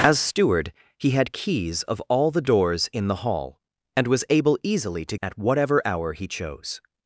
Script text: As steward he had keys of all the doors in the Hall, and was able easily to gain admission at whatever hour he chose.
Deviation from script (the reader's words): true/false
true